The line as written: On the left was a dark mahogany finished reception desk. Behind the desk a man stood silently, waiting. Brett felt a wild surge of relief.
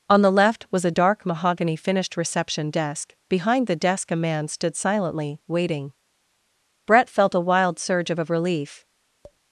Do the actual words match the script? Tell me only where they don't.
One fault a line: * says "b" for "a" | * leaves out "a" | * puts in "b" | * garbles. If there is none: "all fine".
* puts in "of"